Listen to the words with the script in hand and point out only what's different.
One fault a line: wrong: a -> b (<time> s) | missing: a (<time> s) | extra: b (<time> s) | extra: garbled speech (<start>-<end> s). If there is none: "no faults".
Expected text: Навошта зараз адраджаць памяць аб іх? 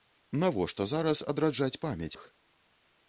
missing: аб (2.1 s)